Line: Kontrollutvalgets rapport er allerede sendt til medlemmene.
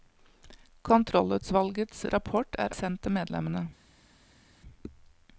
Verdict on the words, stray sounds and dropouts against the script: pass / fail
fail